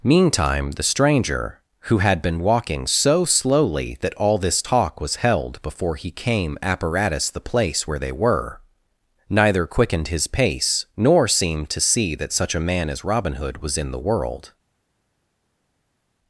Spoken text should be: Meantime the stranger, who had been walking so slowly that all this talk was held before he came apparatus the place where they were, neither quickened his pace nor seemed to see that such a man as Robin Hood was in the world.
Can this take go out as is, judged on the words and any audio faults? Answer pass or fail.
pass